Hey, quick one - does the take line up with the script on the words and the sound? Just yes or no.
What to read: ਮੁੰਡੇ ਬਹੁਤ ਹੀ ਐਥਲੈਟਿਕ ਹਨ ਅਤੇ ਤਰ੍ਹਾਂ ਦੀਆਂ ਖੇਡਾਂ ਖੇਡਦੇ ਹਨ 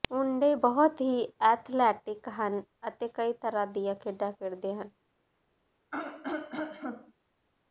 no